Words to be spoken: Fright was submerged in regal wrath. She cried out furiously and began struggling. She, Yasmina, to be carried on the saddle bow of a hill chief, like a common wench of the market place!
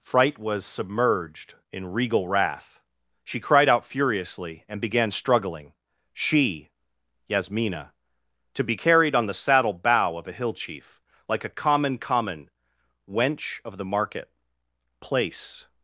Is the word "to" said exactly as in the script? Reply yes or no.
yes